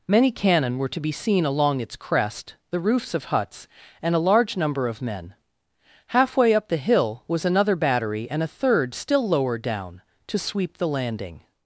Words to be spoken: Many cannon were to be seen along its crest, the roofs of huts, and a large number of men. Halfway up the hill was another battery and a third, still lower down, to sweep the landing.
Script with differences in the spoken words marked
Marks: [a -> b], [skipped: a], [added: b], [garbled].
Many cannon were to be seen along its crest, the roofs of huts, and a large number of men. Halfway up the hill was another battery and a third, still lower down, to sweep the landing.